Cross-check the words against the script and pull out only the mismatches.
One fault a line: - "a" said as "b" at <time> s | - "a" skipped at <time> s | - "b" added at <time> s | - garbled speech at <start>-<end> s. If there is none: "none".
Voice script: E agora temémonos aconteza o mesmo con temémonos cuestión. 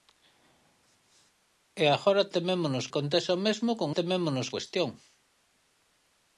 none